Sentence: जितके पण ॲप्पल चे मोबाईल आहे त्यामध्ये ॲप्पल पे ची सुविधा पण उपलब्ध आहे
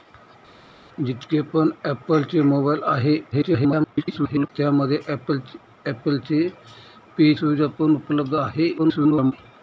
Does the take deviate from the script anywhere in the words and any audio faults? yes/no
yes